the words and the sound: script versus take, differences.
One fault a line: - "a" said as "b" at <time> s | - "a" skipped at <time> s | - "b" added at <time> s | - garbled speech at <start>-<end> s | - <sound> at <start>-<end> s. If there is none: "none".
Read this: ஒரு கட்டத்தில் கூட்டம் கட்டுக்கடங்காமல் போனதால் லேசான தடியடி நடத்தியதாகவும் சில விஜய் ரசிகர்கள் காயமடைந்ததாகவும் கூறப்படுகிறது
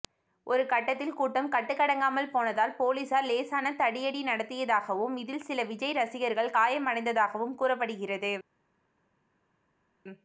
- "போலீசார்" added at 2.8 s
- "இதில்" added at 5.2 s